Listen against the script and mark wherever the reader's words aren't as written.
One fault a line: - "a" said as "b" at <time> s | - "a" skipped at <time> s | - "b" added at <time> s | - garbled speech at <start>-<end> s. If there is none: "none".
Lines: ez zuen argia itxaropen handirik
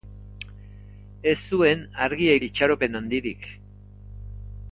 none